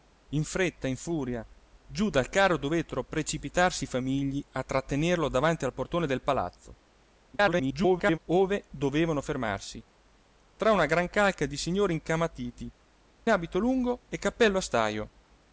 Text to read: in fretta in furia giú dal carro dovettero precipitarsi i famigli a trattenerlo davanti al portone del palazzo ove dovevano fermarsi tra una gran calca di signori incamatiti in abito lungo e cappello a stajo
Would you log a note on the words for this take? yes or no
yes